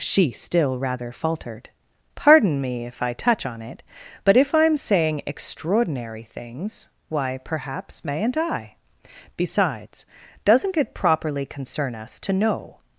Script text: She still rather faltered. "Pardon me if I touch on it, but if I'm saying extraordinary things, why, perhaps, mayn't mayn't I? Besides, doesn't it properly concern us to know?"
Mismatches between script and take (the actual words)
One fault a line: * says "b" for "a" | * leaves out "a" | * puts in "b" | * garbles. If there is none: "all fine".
* leaves out "mayn't"